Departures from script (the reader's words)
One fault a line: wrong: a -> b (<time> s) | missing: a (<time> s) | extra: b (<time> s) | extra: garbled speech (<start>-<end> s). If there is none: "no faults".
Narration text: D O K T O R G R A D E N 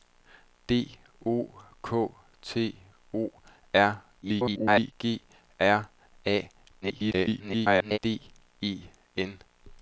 extra: garbled speech (4.2-4.9 s)
extra: garbled speech (6.8-8.0 s)